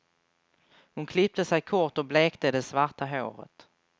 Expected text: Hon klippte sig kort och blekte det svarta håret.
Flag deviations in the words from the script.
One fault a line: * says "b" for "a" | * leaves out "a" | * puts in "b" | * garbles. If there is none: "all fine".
all fine